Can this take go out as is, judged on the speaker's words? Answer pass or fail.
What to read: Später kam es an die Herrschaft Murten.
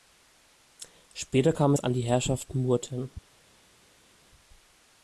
pass